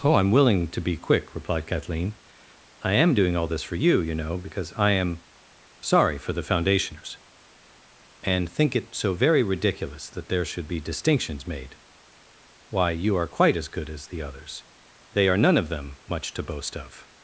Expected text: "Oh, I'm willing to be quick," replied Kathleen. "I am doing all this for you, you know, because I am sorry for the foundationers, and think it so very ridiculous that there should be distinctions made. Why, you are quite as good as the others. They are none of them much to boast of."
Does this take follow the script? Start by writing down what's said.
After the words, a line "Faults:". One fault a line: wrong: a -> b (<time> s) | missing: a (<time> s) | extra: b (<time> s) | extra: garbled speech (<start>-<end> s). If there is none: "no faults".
"Oh, I'm willing to be quick," replied Kathleen. "I am doing all this for you, you know, because I am sorry for the foundationers, and think it so very ridiculous that there should be distinctions made. Why, you are quite as good as the others. They are none of them much to boast of."
Faults:
no faults